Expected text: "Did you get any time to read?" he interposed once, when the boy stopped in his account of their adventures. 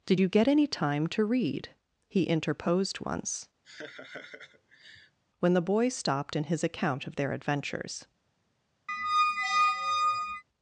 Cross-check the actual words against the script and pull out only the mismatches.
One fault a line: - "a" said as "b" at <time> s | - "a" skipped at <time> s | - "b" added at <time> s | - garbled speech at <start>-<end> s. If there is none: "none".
none